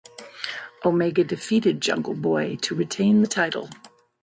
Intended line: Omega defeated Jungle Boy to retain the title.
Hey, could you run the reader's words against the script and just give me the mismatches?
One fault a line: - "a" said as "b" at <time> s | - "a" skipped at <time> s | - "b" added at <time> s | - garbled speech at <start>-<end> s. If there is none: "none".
none